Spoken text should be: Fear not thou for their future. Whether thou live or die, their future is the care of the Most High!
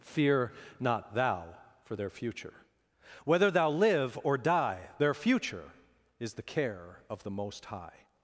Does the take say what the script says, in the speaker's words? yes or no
yes